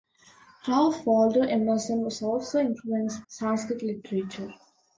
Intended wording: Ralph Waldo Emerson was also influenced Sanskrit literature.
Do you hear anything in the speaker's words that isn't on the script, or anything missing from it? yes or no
no